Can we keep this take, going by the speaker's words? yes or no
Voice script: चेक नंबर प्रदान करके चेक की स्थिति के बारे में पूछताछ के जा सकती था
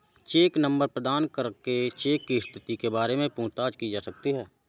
no